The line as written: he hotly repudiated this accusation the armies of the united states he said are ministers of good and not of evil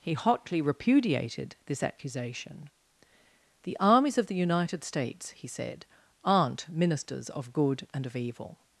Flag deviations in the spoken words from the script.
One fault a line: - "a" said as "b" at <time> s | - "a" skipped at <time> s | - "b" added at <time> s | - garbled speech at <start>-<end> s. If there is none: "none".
- "are" said as "aren't" at 6.2 s
- "not" skipped at 8.1 s